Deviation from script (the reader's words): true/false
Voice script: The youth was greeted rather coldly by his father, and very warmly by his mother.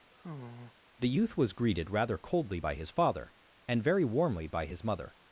false